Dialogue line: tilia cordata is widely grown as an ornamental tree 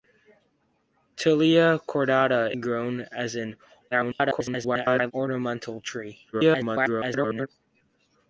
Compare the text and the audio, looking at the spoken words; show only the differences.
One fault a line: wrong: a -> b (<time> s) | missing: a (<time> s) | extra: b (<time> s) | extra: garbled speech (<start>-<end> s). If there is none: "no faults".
missing: is widely (2.5 s)
extra: garbled speech (3.9-5.1 s)
extra: garbled speech (6.3-7.5 s)